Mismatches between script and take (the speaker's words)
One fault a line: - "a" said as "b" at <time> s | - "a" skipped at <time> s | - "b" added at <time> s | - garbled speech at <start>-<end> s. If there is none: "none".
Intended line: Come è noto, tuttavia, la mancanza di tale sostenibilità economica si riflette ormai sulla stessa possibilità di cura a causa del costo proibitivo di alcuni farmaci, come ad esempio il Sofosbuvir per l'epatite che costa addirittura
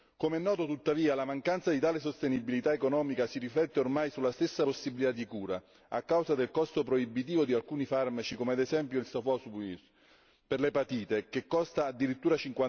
none